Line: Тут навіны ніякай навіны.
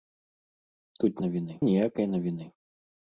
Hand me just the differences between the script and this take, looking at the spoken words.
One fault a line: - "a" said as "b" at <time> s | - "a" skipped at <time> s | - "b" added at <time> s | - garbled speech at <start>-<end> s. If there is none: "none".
none